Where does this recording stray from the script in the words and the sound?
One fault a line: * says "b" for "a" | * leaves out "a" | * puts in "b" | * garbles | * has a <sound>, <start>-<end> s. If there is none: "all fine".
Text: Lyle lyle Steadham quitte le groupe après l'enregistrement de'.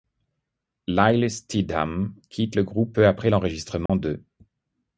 * leaves out "lyle"
* puts in "peu"
* has a dropout, 3.9-3.9 s